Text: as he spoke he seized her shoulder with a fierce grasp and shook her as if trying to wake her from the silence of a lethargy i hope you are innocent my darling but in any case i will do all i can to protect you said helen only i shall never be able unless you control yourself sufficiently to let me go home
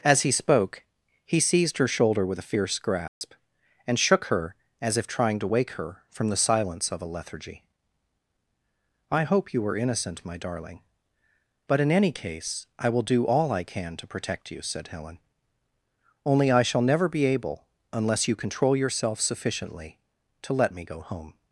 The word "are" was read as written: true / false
false